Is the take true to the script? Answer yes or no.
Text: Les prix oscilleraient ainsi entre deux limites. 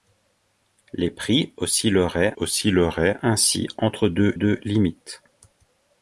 no